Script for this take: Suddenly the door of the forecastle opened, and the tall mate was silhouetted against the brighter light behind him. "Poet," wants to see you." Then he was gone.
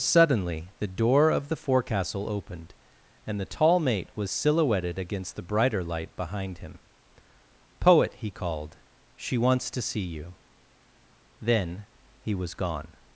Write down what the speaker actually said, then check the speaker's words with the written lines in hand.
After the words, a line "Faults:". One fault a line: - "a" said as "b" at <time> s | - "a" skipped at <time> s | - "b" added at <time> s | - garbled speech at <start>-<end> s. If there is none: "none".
Suddenly the door of the forecastle opened, and the tall mate was silhouetted against the brighter light behind him. "Poet," he called. "She wants to see you." Then he was gone.
Faults:
- "he called She" added at 8.2 s